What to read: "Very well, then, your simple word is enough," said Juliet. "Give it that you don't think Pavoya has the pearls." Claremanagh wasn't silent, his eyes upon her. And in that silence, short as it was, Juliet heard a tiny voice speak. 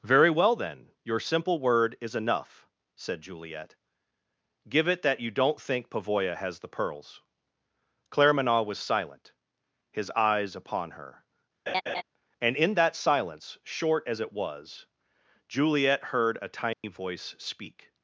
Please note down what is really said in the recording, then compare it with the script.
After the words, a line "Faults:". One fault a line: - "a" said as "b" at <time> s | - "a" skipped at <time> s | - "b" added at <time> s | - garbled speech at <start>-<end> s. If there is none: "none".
"Very well, then, your simple word is enough," said Juliet. "Give it that you don't think Pavoya has the pearls." Claremanagh was silent, his eyes upon her. And in that silence, short as it was, Juliet heard a tiny voice speak.
Faults:
- "wasn't" said as "was" at 8.6 s